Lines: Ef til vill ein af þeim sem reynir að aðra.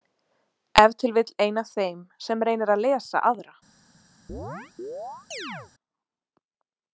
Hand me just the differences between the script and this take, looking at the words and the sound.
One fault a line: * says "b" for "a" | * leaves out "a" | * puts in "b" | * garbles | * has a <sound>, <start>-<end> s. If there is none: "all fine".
* puts in "lesa"
* has a chirp, 4.3-5.7 s